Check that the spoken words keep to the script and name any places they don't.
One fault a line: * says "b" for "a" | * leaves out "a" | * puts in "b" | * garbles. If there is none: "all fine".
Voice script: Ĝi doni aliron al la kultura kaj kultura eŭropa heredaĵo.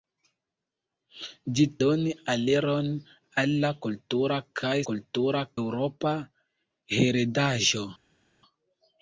all fine